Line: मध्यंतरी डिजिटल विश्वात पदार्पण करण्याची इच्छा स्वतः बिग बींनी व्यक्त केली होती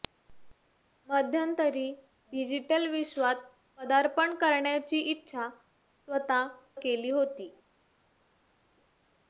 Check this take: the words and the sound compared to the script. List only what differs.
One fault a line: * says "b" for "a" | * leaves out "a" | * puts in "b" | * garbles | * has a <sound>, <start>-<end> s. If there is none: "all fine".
* leaves out "बिग बींनी व्यक्त"